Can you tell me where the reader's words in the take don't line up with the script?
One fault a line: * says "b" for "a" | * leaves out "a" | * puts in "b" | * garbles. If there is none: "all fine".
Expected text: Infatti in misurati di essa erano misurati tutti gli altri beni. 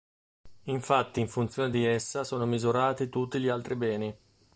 * says "funzione" for "misurati"
* says "sono" for "erano"